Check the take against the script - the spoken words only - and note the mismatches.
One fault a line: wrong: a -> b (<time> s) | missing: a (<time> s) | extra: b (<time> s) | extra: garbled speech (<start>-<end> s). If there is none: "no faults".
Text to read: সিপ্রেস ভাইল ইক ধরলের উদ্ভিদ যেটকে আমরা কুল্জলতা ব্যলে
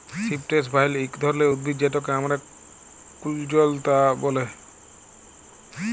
no faults